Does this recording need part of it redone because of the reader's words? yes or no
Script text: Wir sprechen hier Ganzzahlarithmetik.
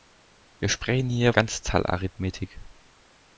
no